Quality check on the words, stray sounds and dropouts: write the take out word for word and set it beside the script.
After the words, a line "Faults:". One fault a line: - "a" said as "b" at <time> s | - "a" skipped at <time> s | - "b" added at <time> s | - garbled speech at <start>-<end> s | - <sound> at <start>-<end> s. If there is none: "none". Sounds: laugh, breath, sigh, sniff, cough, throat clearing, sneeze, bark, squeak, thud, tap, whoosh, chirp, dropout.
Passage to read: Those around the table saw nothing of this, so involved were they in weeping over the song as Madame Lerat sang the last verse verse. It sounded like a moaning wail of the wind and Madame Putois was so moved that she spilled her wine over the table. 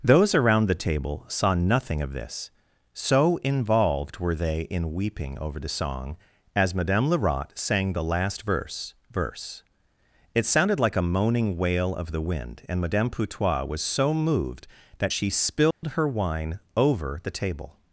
Those around the table saw nothing of this, so involved were they in weeping over the song as Madame Lerat sang the last verse verse. It sounded like a moaning wail of the wind and Madame Putois was so moved that she spilled her wine over the table.
Faults:
- dropout at 15.7-15.8 s